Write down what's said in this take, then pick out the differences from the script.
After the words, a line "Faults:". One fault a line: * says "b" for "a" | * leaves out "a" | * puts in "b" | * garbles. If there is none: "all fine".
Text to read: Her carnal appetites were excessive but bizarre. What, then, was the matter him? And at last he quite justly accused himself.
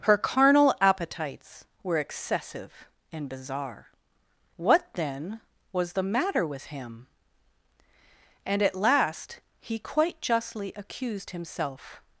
Her carnal appetites were excessive and bizarre. What, then, was the matter with him? And at last he quite justly accused himself.
Faults:
* says "and" for "but"
* puts in "with"